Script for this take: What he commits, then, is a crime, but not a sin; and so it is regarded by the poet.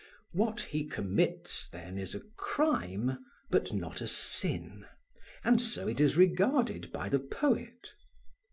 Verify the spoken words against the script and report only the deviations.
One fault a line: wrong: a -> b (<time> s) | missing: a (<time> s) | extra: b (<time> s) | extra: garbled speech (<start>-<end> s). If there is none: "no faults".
no faults